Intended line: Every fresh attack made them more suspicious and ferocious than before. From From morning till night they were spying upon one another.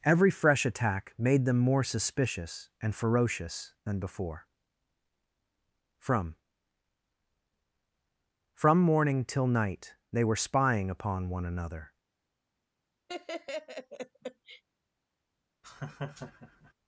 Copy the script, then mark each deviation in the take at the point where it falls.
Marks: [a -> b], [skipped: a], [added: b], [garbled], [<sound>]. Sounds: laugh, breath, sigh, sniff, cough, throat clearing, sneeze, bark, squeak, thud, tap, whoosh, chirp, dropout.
Every fresh attack made them more suspicious and ferocious than before. From From morning till night they were spying upon one another. [laugh] [laugh]